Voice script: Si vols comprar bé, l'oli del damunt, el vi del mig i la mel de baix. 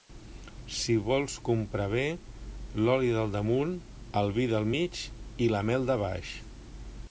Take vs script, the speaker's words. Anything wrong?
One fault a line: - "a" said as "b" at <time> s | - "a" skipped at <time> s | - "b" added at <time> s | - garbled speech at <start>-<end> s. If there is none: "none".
none